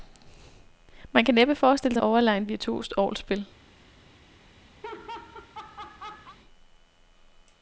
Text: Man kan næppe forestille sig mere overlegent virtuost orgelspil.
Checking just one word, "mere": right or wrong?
wrong